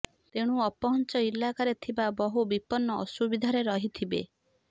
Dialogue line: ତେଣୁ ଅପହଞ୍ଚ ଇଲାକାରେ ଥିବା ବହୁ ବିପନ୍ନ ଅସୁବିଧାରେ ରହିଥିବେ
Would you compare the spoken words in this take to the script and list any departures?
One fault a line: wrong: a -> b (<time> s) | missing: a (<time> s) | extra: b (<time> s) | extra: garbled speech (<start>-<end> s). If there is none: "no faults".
no faults